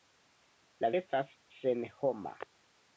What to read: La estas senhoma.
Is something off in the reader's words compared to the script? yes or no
no